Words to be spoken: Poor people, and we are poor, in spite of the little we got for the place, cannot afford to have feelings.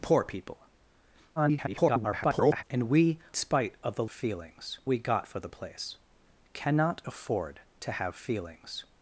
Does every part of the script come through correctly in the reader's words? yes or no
no